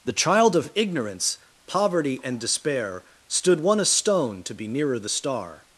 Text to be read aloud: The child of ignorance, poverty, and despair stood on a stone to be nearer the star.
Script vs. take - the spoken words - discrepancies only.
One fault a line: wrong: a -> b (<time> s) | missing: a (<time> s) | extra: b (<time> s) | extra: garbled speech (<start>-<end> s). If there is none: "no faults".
wrong: on -> one (3.6 s)